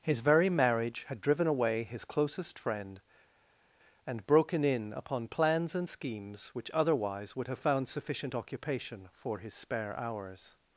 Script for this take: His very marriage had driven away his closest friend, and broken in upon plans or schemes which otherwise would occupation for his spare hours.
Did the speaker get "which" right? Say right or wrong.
right